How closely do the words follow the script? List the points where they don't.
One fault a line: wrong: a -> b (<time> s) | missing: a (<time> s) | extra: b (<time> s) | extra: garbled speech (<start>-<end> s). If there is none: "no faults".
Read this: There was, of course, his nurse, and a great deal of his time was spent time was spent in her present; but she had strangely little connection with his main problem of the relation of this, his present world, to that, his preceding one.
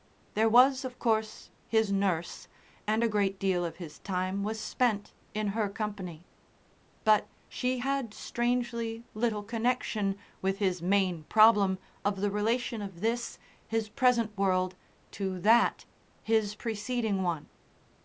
missing: time was spent (5.1 s)
wrong: present -> company (5.7 s)